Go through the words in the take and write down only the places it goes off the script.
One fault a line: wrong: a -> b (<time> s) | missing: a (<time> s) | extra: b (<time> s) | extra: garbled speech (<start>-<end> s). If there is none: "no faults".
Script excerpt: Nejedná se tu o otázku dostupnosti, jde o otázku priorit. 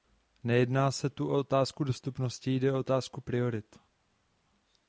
no faults